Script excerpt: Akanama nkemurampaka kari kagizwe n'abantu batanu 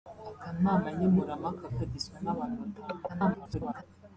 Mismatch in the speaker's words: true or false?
true